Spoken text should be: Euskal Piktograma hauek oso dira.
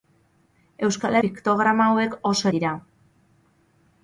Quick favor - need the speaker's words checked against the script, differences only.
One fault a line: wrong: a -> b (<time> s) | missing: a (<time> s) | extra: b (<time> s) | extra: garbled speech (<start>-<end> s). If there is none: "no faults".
no faults